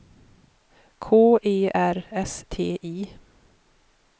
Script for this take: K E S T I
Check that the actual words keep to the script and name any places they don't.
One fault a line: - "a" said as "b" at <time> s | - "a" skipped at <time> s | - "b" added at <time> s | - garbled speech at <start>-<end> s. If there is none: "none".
- "R" added at 1.7 s